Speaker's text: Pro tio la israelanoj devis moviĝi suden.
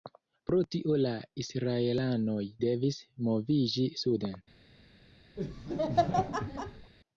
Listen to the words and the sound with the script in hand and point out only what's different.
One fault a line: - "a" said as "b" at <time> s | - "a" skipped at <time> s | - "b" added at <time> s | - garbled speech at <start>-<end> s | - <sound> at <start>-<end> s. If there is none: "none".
- laugh at 5.4-6.9 s